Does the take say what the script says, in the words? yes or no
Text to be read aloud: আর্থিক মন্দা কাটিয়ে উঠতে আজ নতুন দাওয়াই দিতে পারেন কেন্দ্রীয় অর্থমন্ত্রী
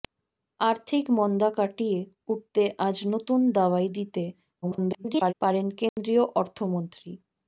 no